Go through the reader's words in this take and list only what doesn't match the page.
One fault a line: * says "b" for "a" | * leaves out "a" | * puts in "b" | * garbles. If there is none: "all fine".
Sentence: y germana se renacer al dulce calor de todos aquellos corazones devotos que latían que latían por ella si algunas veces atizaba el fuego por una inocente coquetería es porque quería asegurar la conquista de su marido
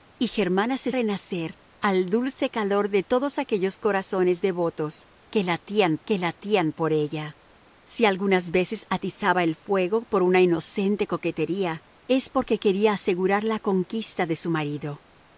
all fine